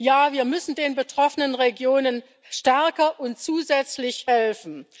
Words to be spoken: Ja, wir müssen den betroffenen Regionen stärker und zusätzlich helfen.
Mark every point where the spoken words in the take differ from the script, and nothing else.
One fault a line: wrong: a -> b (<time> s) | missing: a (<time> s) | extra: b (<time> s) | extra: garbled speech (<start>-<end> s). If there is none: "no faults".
no faults